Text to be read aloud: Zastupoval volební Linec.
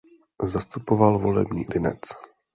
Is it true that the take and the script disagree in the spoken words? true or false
false